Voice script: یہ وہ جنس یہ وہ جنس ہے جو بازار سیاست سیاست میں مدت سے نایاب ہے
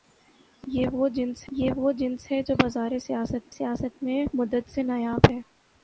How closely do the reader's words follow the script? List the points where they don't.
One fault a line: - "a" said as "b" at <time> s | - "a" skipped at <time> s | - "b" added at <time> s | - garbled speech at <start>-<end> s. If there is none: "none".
none